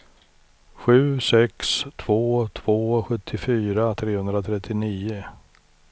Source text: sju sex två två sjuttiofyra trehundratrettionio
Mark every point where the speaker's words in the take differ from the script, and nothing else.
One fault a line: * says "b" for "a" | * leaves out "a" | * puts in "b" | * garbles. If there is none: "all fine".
all fine